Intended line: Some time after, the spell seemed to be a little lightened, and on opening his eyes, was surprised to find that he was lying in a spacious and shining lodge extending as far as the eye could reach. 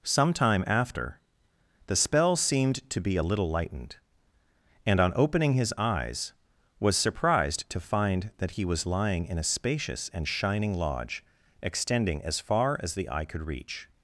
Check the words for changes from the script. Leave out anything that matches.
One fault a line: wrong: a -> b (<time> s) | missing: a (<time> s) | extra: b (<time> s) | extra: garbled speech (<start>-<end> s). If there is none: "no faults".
no faults